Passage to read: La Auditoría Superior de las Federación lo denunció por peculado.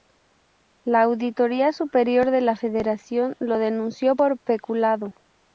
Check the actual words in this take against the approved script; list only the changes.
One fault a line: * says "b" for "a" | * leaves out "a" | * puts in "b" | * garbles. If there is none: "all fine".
* says "la" for "las"